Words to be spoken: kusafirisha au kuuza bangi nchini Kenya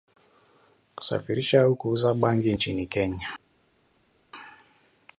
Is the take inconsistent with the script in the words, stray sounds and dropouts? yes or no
no